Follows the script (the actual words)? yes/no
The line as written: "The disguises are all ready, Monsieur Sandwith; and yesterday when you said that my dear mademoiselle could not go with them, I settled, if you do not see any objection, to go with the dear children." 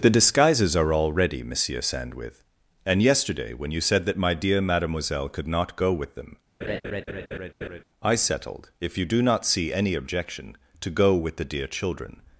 yes